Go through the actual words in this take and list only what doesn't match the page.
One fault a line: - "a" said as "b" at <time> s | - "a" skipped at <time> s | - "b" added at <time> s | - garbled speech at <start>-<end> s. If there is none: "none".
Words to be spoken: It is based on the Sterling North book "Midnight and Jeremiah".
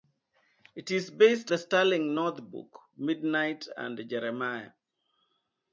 - "on" skipped at 1.5 s